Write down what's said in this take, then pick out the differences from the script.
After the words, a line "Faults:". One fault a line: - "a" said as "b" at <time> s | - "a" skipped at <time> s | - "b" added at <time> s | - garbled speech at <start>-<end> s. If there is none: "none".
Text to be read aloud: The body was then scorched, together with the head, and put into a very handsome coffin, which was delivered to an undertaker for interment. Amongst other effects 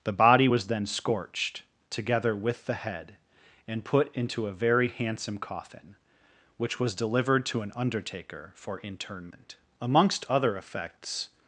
The body was then scorched, together with the head, and put into a very handsome coffin, which was delivered to an undertaker for interment. Amongst other effects
Faults:
none